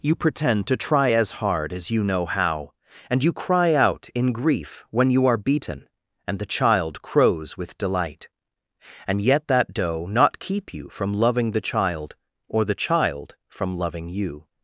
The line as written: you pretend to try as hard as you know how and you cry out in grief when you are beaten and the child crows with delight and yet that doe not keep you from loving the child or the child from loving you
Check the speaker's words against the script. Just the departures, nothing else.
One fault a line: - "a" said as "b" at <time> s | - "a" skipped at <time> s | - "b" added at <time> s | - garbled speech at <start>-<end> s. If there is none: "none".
none